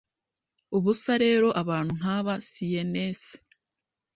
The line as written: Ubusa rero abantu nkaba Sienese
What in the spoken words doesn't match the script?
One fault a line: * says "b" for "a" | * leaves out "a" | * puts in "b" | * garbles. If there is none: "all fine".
all fine